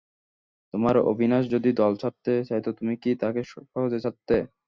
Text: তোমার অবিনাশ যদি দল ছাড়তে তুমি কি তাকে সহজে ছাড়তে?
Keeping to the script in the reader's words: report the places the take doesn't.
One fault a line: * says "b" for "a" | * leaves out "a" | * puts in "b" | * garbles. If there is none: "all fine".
* puts in "চাইত"